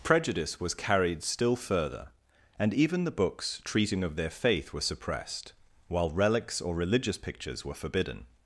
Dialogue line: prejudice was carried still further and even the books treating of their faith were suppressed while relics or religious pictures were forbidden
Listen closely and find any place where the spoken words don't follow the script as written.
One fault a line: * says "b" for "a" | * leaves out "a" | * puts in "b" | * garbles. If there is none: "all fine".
all fine